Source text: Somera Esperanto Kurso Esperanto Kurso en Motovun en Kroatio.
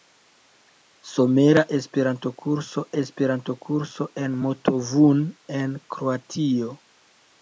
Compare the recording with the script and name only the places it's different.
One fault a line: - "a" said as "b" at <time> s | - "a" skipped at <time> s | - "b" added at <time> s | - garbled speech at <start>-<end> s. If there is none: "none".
none